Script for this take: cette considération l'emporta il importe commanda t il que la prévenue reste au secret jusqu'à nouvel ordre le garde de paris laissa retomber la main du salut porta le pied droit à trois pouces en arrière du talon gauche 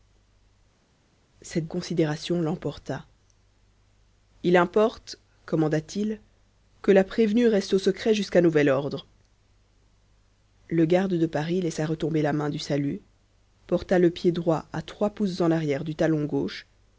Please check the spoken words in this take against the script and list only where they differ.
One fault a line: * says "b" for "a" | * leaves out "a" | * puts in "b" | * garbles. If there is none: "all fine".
all fine